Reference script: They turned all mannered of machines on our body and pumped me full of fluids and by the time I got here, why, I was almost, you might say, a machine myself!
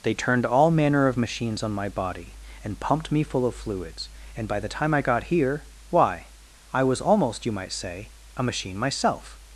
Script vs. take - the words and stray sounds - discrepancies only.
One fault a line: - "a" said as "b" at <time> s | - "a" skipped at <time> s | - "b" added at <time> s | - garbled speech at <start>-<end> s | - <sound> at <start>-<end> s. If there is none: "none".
- "mannered" said as "manner" at 0.7 s
- "our" said as "my" at 1.7 s